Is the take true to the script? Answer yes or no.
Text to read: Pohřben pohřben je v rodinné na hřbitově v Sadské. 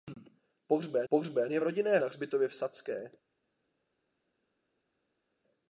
yes